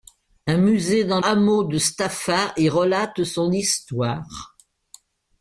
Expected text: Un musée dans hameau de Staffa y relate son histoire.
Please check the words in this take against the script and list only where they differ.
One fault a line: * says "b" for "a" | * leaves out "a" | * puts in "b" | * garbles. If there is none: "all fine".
all fine